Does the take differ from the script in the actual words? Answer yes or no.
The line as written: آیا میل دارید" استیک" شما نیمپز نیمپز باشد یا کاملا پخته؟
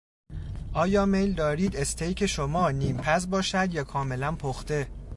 yes